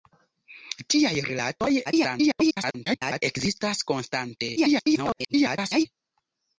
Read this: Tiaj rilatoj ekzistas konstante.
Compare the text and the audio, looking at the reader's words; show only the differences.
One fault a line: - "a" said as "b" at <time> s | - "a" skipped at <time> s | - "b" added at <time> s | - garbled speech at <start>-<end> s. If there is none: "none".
- garbled speech at 1.8-3.2 s
- garbled speech at 4.6-5.9 s